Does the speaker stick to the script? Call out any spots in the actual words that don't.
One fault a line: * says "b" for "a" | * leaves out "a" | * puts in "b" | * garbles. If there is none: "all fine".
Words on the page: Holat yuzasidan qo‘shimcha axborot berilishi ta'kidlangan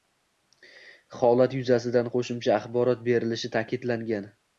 all fine